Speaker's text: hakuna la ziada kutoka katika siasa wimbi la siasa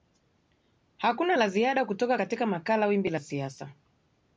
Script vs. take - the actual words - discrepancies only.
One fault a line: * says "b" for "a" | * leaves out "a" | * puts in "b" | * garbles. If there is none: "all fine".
* says "makala" for "siasa"